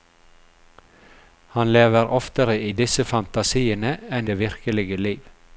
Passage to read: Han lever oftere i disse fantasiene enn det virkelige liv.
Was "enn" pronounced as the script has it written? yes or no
yes